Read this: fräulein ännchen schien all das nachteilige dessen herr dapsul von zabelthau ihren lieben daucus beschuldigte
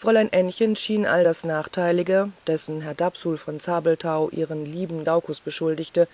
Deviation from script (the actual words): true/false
false